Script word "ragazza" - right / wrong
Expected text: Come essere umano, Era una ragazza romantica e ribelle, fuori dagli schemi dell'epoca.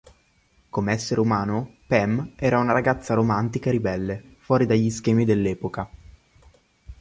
right